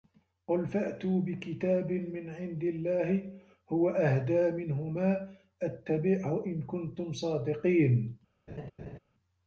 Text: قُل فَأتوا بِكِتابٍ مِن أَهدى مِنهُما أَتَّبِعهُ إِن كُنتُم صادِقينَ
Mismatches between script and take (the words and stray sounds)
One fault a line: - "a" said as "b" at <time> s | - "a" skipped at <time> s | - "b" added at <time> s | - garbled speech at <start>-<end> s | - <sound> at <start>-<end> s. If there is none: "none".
- "عِندِ اللَّهِ هُوَ" added at 2.3 s
- laugh at 8.5-9.0 s